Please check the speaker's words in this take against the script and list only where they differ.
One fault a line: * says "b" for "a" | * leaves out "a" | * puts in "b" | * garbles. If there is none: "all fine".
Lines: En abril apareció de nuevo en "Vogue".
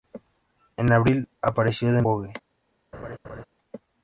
* leaves out "nuevo en"